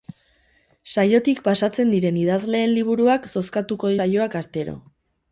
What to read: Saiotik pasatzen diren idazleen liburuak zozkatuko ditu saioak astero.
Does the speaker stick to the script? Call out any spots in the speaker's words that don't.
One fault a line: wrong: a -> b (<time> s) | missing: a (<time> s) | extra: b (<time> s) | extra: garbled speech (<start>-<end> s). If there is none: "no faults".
missing: ditu (3.9 s)